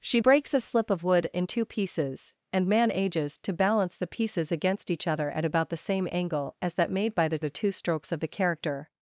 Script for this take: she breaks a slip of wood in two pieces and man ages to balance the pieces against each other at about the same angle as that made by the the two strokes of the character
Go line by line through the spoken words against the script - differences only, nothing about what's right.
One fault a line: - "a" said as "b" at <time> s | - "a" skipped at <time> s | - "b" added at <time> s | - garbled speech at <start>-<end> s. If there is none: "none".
none